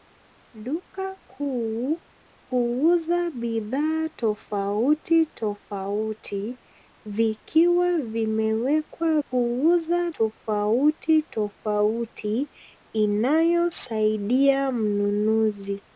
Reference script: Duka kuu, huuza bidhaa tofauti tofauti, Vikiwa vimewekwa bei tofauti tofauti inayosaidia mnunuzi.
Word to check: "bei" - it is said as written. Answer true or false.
false